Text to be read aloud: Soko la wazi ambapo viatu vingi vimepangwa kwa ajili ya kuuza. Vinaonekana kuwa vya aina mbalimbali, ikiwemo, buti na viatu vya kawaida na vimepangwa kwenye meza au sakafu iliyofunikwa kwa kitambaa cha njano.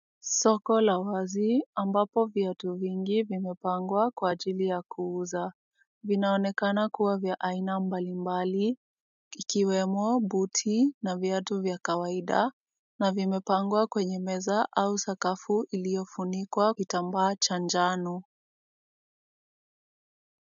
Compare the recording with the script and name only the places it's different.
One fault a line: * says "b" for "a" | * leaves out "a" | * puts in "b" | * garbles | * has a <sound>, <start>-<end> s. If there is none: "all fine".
* leaves out "kwa"